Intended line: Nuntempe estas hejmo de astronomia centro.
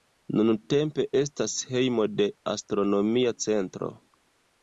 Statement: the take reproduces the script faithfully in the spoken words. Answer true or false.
true